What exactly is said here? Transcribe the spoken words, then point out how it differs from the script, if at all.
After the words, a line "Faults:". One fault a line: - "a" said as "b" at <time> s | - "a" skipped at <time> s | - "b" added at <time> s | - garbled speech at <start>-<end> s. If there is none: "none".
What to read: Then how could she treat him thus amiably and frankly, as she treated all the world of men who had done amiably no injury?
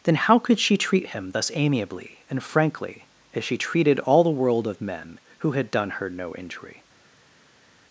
Then how could she treat him thus amiably and frankly, as she treated all the world of men who had done her no injury?
Faults:
- "amiably" said as "her" at 5.9 s